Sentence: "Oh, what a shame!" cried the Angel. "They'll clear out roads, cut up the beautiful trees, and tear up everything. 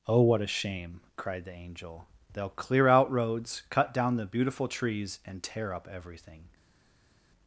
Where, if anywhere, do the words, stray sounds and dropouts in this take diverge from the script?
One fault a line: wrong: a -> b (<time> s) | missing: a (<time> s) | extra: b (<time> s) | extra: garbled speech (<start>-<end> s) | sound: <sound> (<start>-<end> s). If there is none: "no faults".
wrong: up -> down (3.9 s)